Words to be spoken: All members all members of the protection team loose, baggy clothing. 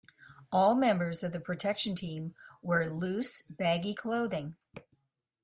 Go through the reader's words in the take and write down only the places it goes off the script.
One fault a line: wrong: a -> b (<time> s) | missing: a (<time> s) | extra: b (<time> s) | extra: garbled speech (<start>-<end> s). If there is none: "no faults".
missing: all members (1.2 s)
extra: wear (2.6 s)